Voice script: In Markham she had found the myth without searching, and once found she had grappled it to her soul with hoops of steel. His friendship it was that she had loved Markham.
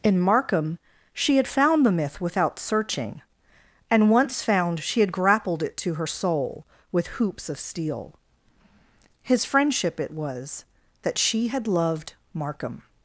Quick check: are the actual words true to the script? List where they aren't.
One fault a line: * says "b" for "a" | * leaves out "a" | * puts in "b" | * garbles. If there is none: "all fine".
all fine